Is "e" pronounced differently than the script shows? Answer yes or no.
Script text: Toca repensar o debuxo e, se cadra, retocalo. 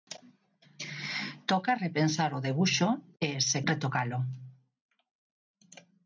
no